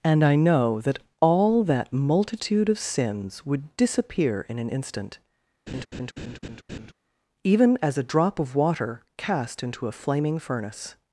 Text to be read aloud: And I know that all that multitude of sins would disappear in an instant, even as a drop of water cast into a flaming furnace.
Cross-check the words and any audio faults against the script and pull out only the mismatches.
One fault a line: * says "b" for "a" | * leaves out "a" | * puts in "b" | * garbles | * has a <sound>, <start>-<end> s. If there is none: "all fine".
* has a laugh, 5.7-6.9 s